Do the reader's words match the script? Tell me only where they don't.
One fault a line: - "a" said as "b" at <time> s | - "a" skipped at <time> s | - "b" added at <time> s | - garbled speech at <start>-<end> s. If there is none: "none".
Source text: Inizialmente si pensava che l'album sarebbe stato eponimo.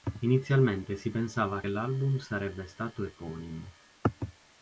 - "che" skipped at 1.6 s